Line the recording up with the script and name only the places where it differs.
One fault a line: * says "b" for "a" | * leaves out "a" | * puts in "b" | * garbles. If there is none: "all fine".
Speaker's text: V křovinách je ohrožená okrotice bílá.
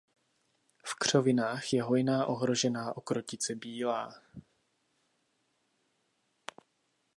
* puts in "hojná"